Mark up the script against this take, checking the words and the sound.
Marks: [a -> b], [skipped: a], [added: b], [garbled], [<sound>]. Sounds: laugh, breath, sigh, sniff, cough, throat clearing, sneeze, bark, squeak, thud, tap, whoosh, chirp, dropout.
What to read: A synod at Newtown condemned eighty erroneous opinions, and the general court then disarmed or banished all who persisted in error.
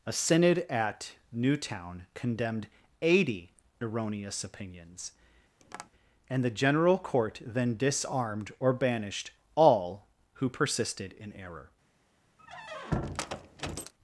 A synod at Newtown condemned eighty erroneous opinions, [tap] and the general court then disarmed or banished all who persisted in error. [squeak]